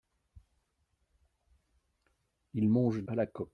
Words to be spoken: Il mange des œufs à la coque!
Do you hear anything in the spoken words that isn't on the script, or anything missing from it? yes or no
yes